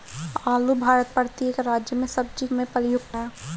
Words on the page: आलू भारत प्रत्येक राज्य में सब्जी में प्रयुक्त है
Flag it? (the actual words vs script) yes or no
no